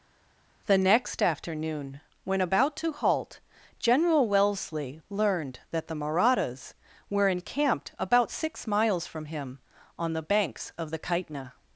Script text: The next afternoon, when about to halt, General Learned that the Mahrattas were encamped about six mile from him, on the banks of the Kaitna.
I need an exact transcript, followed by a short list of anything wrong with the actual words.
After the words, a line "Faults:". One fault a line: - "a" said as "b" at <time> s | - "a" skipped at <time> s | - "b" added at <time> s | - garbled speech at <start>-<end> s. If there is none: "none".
The next afternoon, when about to halt, General Wellesley learned that the Mahrattas were encamped about six miles from him, on the banks of the Kaitna.
Faults:
- "Wellesley" added at 4.3 s
- "mile" said as "miles" at 8.7 s